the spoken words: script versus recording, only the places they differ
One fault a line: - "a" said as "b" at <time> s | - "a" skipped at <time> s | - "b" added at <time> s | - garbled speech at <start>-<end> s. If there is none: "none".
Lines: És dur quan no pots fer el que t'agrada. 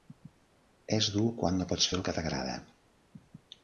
none